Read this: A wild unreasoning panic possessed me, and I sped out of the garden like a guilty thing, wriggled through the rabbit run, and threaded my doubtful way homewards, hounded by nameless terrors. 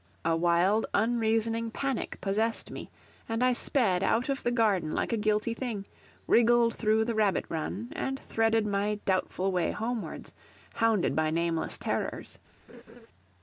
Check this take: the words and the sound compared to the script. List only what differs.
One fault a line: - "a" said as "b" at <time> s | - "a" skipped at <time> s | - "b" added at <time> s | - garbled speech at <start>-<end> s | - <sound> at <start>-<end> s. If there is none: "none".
- laugh at 12.7-13.1 s